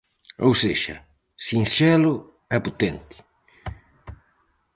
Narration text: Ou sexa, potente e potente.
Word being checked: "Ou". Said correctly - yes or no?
yes